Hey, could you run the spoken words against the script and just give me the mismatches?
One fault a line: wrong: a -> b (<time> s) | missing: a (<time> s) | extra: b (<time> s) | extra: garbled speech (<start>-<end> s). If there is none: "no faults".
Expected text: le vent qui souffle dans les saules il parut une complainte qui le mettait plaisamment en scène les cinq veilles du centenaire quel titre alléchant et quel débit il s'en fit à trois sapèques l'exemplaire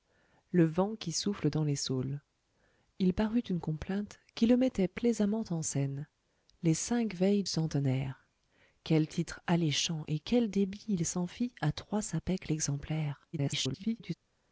missing: du (7.4 s)
extra: garbled speech (13.3-14.1 s)